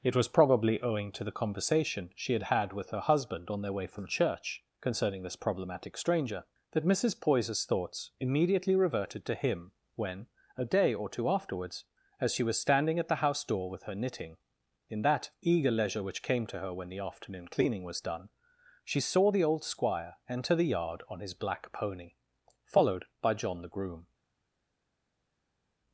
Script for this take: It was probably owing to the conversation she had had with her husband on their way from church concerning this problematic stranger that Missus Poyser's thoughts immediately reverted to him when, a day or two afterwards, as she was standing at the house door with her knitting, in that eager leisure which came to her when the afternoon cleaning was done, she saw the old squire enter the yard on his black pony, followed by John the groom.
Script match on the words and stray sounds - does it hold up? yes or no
yes